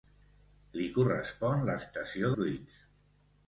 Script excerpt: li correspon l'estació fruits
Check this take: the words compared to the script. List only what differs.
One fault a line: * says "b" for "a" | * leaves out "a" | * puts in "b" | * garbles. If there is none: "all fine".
all fine